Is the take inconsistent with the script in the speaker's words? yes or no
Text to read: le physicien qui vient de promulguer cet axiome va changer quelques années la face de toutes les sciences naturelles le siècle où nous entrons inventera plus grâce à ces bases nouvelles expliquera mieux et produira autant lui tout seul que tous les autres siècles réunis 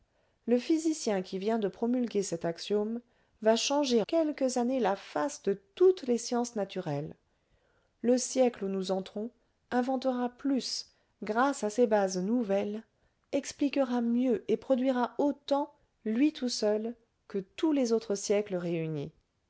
no